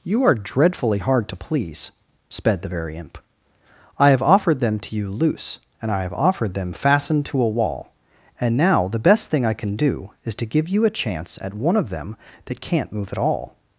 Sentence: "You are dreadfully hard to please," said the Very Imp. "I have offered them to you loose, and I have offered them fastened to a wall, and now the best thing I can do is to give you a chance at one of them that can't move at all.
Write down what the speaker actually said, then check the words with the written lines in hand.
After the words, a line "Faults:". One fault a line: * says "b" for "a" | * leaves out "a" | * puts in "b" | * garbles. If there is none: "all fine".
"You are dreadfully hard to please," sped the Very Imp. "I have offered them to you loose, and I have offered them fastened to a wall, and now the best thing I can do is to give you a chance at one of them that can't move at all.
Faults:
* says "sped" for "said"